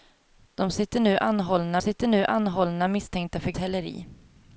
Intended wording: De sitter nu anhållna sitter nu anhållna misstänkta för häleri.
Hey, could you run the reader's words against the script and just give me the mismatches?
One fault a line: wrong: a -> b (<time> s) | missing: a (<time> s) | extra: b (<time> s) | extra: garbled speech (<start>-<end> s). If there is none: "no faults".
no faults